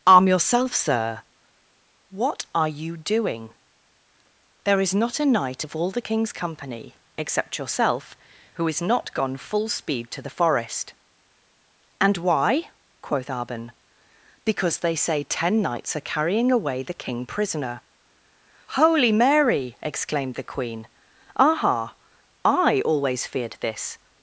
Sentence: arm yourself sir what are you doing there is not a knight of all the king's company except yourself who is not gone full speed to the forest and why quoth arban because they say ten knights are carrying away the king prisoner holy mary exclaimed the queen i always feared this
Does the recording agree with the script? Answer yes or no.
no